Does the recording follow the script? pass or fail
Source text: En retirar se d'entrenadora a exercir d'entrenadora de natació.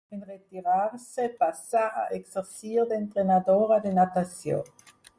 fail